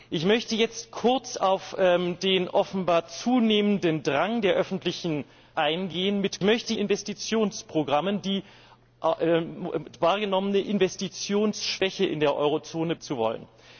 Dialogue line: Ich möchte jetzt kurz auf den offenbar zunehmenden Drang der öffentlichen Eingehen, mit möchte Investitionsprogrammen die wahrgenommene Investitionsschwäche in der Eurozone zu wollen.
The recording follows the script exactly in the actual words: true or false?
true